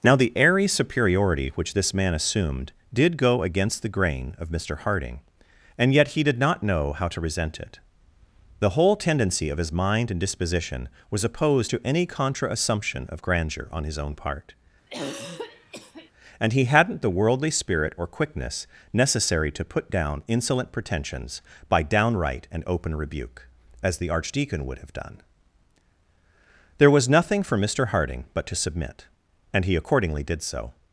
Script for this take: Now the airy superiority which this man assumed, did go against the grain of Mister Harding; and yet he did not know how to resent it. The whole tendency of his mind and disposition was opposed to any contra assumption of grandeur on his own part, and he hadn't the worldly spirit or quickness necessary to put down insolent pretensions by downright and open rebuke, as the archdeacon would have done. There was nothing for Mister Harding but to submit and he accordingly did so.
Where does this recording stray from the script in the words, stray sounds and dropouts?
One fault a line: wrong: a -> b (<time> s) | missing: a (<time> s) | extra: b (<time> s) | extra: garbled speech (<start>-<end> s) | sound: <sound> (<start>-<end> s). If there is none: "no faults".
sound: throat clearing (14.9-16.1 s)